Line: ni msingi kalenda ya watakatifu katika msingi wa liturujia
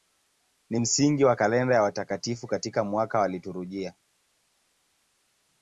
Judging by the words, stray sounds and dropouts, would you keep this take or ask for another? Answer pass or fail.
fail